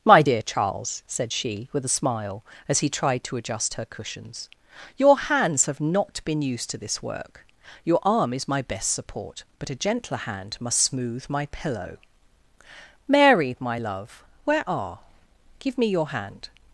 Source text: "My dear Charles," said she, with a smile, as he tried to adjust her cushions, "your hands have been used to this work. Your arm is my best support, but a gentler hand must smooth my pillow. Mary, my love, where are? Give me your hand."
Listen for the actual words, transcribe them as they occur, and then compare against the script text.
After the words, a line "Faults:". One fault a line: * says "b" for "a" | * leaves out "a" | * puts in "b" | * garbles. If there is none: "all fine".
"My dear Charles," said she, with a smile, as he tried to adjust her cushions, "your hands have not been used to this work. Your arm is my best support, but a gentler hand must smooth my pillow. Mary, my love, where are? Give me your hand."
Faults:
* puts in "not"